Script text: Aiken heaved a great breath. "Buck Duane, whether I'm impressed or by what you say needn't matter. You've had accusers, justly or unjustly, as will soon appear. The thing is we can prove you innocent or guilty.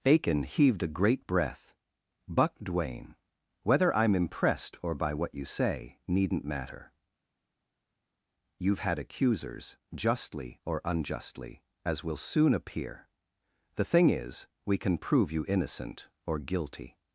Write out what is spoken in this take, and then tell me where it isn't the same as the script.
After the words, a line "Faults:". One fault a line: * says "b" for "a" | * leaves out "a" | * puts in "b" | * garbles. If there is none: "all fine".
Aiken heaved a great breath. "Buck Duane, whether I'm impressed or by what you say needn't matter. You've had accusers, justly or unjustly, as will soon appear. The thing is we can prove you innocent or guilty.
Faults:
all fine